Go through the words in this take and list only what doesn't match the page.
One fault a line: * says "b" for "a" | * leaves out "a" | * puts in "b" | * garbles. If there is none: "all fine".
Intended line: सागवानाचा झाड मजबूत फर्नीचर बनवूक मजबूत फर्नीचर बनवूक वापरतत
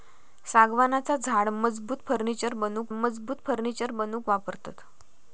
all fine